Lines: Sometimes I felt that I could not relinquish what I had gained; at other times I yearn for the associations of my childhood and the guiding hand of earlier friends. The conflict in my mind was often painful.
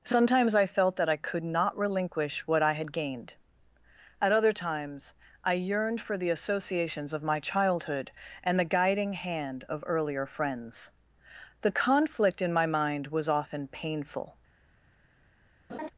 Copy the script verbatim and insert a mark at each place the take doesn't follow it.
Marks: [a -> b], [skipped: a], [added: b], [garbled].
Sometimes I felt that I could not relinquish what I had gained; at other times I [yearn -> yearned] for the associations of my childhood and the guiding hand of earlier friends. The conflict in my mind was often painful.